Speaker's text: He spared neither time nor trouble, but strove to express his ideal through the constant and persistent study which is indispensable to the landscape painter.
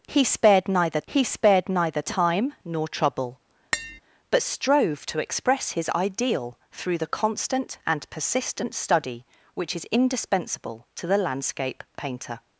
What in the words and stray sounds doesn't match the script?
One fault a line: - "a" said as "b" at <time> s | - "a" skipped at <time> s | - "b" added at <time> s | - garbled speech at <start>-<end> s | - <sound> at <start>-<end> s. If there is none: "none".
- "he spared neither" added at 1.1 s
- tap at 3.7-4.0 s